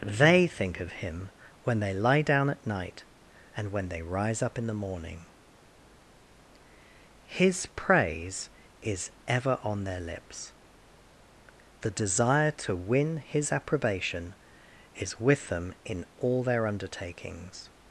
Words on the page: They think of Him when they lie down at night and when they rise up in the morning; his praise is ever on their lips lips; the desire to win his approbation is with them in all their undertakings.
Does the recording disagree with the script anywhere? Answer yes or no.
yes